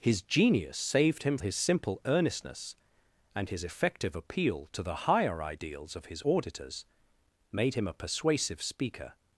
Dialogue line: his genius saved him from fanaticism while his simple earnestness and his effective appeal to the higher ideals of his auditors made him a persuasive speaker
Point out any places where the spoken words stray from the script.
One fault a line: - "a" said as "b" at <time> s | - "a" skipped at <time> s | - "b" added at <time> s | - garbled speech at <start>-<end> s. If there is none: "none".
- "from fanaticism while" skipped at 1.4 s